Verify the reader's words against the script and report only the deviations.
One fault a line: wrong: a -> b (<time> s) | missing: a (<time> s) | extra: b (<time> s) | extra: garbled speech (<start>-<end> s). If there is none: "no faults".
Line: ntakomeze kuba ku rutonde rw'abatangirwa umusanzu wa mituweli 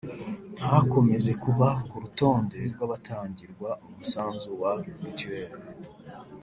no faults